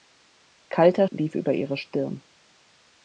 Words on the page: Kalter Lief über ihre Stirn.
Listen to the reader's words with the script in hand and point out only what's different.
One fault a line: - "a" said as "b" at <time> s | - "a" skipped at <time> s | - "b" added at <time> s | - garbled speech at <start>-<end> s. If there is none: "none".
none